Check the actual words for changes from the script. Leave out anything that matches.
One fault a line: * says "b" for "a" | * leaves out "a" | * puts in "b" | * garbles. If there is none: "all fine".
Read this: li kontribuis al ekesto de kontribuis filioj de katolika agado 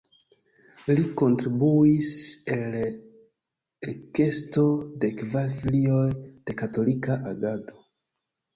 * says "kvar" for "kontribuis"